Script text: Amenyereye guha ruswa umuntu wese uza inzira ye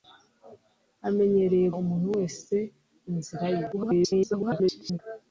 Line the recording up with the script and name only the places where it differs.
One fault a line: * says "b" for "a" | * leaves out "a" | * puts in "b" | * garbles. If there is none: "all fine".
* leaves out "guha ruswa"
* leaves out "uza"
* garbles